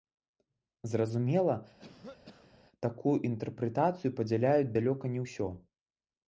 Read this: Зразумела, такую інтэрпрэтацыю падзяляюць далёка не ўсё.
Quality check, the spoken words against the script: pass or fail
pass